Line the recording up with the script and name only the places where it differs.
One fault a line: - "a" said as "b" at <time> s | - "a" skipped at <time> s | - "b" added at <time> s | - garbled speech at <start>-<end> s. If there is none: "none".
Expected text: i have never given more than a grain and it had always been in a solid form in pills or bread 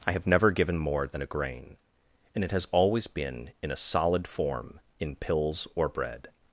- "had" said as "has" at 2.5 s